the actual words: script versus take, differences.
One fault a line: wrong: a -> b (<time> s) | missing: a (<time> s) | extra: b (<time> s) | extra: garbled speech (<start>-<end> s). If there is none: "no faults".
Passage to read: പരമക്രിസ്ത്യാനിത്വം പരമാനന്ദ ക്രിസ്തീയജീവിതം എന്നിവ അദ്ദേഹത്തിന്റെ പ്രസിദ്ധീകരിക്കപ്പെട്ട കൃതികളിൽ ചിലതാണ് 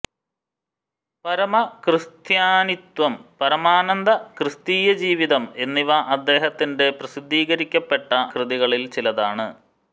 no faults